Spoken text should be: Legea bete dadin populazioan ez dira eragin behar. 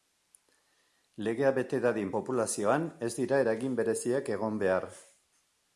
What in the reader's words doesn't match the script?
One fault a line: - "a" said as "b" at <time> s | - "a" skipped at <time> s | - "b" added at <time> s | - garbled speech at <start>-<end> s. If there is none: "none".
- "bereziak egon" added at 3.8 s